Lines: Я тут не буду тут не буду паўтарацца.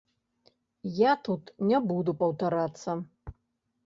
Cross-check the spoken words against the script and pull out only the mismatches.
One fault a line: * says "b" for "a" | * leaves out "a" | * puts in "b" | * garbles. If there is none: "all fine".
* leaves out "тут не буду"